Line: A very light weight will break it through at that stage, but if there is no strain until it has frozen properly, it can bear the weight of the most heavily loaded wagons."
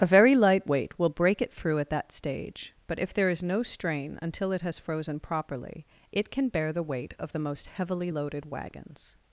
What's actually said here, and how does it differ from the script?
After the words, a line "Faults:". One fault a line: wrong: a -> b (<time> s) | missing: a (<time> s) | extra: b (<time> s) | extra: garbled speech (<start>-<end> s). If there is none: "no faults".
A very light weight will break it through at that stage, but if there is no strain until it has frozen properly, it can bear the weight of the most heavily loaded wagons."
Faults:
no faults